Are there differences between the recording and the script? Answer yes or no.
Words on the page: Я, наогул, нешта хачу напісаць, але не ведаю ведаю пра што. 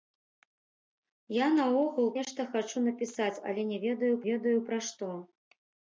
no